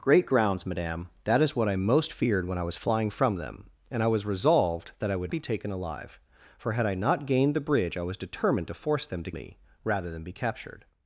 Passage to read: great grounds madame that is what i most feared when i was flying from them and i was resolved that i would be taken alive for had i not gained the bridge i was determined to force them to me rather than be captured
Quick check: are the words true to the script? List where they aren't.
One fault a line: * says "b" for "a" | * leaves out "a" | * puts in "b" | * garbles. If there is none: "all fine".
all fine